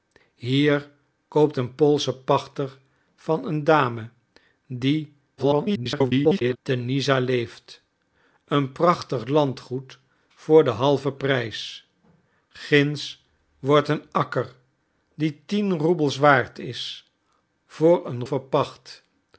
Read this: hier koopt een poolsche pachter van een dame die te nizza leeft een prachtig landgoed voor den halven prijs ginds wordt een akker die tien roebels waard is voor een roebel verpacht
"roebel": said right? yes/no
no